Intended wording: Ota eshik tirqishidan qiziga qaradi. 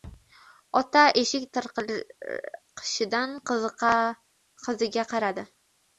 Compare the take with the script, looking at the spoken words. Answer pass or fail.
pass